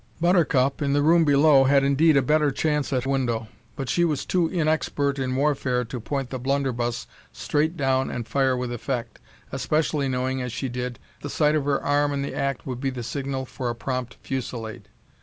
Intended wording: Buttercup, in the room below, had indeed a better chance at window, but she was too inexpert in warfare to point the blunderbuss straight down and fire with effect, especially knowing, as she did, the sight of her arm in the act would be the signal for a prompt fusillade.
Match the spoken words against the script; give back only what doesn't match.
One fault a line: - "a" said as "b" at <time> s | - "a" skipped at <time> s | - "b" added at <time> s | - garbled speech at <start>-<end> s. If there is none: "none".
none